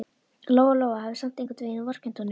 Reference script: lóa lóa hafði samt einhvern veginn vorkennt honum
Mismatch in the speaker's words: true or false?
false